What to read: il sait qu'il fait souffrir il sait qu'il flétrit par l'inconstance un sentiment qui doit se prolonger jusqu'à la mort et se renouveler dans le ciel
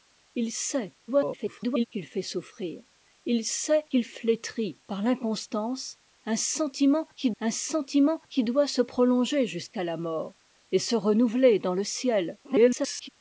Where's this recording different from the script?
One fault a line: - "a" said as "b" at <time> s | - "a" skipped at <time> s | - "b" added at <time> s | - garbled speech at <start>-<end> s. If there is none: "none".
- garbled speech at 1.1-1.9 s
- "un sentiment qui" added at 7.4 s
- garbled speech at 12.4-13.1 s